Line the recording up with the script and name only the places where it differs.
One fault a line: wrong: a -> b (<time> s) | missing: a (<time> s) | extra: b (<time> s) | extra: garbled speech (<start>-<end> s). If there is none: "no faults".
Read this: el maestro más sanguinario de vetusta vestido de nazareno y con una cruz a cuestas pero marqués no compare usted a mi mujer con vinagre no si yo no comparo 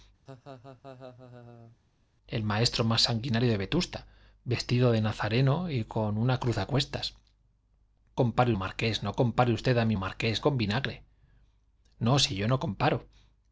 wrong: pero -> compare (8.1 s)
wrong: mujer -> marqués (9.9 s)